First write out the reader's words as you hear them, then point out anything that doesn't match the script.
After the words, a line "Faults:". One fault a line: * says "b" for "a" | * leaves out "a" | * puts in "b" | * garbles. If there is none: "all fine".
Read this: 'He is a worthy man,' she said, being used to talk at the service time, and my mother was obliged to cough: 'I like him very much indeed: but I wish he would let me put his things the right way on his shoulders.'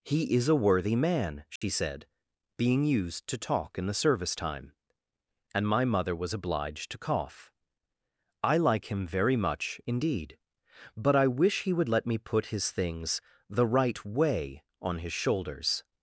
'He is a worthy man,' she said, being used to talk in the service time, and my mother was obliged to cough: 'I like him very much indeed: but I wish he would let me put his things the right way on his shoulders.'
Faults:
* says "in" for "at"